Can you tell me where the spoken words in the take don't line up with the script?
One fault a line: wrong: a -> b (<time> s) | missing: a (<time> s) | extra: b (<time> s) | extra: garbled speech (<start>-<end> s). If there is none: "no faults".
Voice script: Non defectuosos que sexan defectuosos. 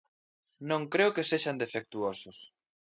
wrong: defectuosos -> creo (0.9 s)